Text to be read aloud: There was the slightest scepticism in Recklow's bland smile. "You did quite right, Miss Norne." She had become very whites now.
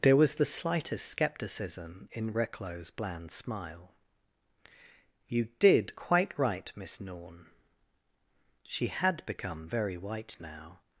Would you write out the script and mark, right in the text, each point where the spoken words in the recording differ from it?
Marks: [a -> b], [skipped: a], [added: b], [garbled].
There was the slightest scepticism in Recklow's bland smile. "You did quite right, Miss Norne." She had become very [whites -> white] now.